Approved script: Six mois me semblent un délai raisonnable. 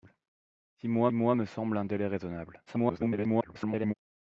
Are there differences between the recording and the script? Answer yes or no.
yes